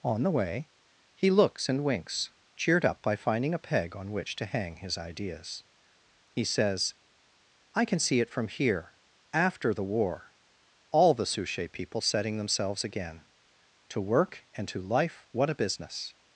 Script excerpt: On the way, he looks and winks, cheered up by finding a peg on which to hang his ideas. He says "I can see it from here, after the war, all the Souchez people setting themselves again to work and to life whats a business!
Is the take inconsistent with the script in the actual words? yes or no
yes